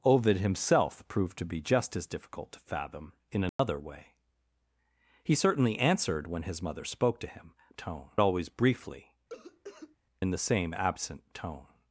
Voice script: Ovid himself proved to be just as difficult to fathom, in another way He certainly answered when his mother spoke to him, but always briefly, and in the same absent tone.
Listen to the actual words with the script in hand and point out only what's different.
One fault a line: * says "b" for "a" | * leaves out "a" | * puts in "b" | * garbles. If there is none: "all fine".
* says "tone" for "but"
* leaves out "and"